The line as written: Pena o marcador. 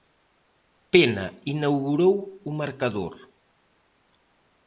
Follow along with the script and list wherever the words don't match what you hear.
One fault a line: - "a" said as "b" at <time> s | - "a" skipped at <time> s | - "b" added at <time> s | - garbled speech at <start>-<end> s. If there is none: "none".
- "inaugurou" added at 1.5 s